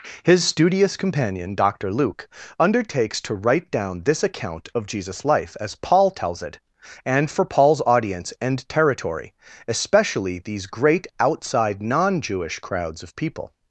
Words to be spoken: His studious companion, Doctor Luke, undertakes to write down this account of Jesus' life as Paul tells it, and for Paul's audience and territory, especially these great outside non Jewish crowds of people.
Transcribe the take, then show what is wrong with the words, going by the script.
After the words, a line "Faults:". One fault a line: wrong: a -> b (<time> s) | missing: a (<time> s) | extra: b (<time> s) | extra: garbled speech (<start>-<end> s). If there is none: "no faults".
His studious companion, Doctor Luke, undertakes to write down this account of Jesus' life as Paul tells it, and for Paul's audience and territory, especially these great outside non Jewish crowds of people.
Faults:
no faults